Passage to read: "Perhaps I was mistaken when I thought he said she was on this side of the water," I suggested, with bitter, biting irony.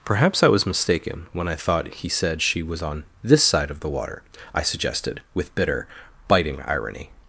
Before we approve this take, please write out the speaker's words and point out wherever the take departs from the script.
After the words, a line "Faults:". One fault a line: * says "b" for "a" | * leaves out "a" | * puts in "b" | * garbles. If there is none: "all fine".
"Perhaps I was mistaken when I thought he said she was on this side of the water," I suggested, with bitter, biting irony.
Faults:
all fine